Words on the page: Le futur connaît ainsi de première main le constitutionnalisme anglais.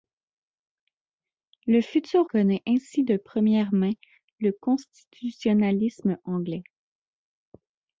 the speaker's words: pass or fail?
pass